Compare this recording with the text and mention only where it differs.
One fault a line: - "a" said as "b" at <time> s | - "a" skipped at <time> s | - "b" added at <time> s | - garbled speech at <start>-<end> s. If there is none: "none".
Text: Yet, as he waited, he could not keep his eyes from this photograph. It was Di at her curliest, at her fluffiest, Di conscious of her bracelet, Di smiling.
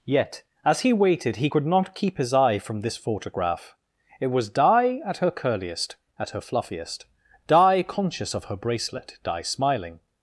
- "eyes" said as "eye" at 2.3 s